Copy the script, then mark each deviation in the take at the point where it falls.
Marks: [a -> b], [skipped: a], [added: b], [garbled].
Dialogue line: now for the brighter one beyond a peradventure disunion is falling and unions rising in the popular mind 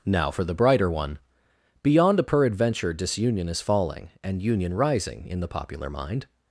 now for the brighter one beyond a peradventure disunion is falling and [unions -> union] rising in the popular mind